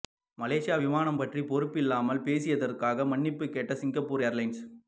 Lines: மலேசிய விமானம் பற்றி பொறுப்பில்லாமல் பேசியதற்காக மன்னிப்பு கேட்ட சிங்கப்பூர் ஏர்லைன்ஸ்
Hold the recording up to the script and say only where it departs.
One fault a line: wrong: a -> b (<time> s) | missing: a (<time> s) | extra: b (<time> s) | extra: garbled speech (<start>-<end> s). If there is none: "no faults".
no faults